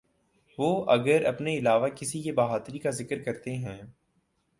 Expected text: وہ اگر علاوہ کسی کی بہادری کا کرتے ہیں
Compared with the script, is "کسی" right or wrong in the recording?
right